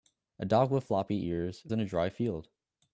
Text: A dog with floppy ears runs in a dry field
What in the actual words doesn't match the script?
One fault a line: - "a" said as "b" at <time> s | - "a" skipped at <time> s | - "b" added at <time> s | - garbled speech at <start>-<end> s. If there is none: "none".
- "runs" skipped at 1.7 s